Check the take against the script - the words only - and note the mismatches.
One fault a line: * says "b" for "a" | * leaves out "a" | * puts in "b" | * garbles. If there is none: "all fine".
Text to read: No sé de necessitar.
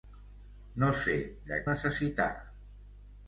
all fine